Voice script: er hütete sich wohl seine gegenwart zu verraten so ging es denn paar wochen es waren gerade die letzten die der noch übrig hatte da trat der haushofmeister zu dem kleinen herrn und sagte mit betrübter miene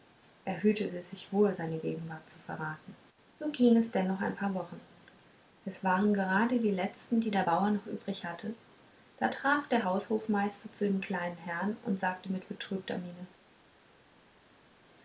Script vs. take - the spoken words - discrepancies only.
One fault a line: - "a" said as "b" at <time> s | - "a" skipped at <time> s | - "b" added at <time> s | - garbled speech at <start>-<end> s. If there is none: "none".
- "noch ein" added at 4.1 s
- "bauer" added at 7.4 s